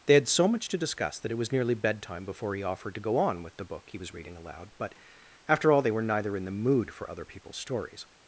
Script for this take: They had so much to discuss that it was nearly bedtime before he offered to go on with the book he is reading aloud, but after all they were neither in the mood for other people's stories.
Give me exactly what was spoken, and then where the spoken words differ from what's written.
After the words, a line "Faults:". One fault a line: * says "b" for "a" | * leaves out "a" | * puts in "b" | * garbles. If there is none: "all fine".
They had so much to discuss that it was nearly bedtime before he offered to go on with the book he was reading aloud, but after all they were neither in the mood for other people's stories.
Faults:
* says "was" for "is"